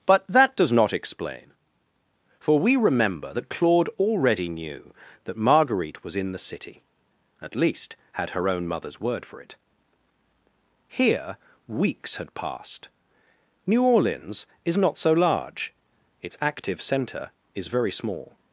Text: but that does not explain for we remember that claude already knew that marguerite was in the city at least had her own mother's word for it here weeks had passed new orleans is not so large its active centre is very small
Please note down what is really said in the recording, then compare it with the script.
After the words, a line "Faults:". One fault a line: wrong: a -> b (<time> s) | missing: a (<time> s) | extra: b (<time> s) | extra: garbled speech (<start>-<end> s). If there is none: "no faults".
but that does not explain for we remember that claude already knew that marguerite was in the city at least had her own mother's word for it here weeks had passed new orleans is not so large its active centre is very small
Faults:
no faults